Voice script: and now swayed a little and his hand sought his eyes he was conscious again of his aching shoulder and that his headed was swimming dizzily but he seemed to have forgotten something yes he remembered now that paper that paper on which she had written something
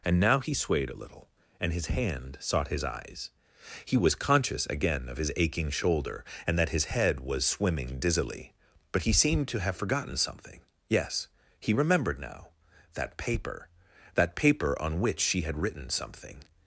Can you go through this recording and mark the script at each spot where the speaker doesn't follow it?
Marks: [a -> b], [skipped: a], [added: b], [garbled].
and now [added: he] swayed a little and his hand sought his eyes he was conscious again of his aching shoulder and that his [headed -> head] was swimming dizzily but he seemed to have forgotten something yes he remembered now that paper that paper on which she had written something